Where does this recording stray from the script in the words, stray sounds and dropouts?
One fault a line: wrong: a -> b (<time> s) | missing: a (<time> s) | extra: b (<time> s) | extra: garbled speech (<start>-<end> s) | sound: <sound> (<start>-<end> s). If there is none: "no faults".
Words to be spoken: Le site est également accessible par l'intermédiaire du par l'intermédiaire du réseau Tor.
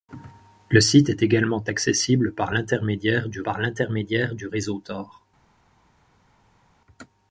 no faults